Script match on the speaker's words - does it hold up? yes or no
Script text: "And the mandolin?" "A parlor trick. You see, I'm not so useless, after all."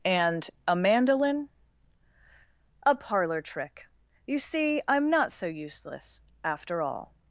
no